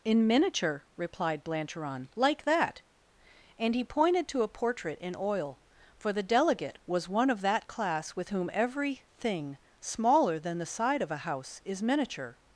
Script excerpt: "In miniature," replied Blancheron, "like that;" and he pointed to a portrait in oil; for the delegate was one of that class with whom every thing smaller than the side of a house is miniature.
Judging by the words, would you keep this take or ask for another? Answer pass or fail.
pass